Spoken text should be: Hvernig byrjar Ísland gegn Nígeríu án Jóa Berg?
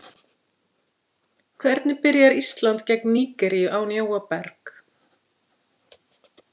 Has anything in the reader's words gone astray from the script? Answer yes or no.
no